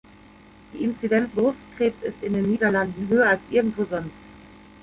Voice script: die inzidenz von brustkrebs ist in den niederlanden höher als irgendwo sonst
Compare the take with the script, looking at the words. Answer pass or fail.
fail